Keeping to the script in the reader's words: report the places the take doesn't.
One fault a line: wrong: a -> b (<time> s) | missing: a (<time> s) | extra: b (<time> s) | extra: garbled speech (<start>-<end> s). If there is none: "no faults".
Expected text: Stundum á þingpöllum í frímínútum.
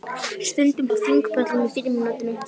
no faults